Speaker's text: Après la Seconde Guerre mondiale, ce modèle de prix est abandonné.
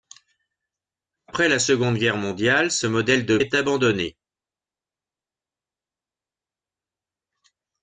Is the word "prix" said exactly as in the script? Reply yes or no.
no